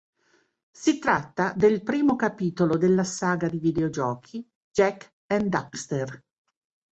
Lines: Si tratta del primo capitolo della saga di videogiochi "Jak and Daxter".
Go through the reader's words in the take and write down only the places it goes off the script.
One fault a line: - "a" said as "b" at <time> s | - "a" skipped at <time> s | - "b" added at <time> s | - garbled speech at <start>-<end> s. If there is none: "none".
none